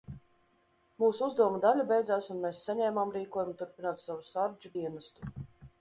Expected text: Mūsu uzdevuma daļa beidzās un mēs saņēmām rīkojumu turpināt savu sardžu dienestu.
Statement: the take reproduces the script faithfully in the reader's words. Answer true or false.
true